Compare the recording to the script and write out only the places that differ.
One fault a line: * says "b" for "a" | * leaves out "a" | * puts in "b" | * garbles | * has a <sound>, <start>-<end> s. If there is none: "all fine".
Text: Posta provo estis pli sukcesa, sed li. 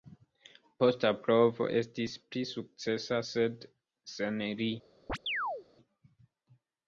* puts in "sen"
* has a chirp, 5.1-5.7 s